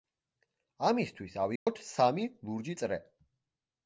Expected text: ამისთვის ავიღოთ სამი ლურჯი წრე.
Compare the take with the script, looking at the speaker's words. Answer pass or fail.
pass